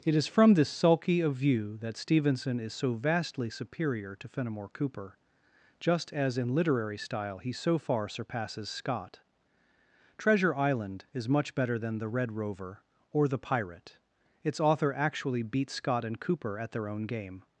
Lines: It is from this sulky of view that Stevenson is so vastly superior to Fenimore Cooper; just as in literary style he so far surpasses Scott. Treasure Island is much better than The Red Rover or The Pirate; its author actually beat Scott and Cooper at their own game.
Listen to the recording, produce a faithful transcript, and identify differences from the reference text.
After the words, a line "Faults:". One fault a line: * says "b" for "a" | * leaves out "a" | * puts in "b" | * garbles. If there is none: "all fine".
It is from this sulky of view that Stevenson is so vastly superior to Fenimore Cooper; just as in literary style he so far surpasses Scott. Treasure Island is much better than The Red Rover or The Pirate; its author actually beat Scott and Cooper at their own game.
Faults:
all fine